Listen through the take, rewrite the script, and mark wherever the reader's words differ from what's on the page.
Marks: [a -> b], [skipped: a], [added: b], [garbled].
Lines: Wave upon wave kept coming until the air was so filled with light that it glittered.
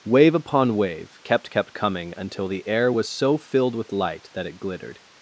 Wave upon wave kept [added: kept] coming until the air was so filled with light that it glittered.